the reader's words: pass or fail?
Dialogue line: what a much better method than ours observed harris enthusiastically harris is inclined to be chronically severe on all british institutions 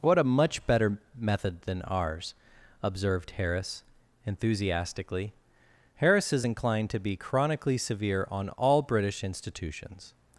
pass